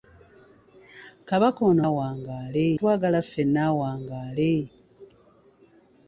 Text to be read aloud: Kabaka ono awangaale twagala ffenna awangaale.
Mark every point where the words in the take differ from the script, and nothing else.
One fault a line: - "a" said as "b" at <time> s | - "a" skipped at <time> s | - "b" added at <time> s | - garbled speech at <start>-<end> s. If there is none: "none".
none